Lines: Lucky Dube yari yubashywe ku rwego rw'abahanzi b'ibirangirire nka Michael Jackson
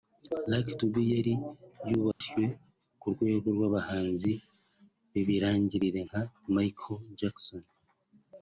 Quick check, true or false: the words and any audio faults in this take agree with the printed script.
false